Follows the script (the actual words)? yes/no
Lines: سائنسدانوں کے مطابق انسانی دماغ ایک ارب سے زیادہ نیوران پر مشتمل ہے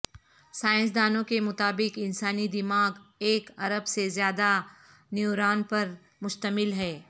yes